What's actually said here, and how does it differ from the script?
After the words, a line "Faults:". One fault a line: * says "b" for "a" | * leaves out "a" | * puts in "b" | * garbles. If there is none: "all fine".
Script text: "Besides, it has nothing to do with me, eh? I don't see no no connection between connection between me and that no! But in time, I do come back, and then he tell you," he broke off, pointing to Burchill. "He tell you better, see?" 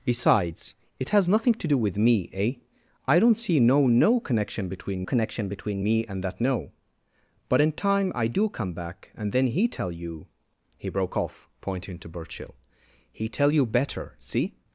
"Besides, it has nothing to do with me, eh? I don't see no no connection between connection between me and that no! But in time, I do come back, and then he tell you," he broke off, pointing to Burchill. "He tell you better, see?"
Faults:
all fine